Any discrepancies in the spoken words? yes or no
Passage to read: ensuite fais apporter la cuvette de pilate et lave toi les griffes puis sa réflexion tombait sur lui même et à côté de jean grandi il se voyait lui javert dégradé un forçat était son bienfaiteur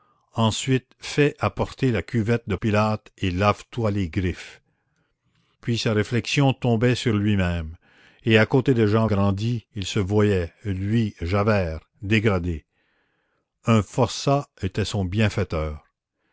no